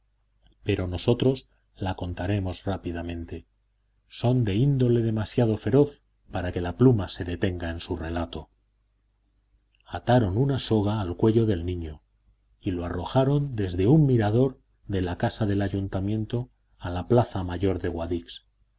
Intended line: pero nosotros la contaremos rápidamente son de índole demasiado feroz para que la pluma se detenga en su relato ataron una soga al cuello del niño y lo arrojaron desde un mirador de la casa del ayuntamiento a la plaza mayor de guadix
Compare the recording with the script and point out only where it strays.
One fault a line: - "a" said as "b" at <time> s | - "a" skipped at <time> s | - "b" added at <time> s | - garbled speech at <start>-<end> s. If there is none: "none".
none